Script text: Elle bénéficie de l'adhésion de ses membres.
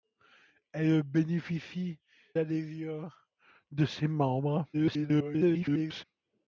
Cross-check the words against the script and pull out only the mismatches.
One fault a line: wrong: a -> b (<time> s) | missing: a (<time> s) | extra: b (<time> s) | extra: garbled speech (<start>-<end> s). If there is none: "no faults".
missing: de (2.0 s)
extra: garbled speech (4.7-6.0 s)